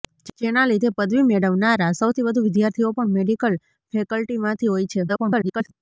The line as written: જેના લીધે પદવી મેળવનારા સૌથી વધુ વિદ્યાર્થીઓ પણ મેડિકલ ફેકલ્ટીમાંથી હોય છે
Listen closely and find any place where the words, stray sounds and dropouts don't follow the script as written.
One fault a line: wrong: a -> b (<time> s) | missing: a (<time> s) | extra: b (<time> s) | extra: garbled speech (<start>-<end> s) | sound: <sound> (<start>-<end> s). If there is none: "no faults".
extra: garbled speech (5.1-5.7 s)